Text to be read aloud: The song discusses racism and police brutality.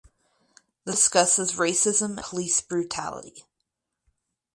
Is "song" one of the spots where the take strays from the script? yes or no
yes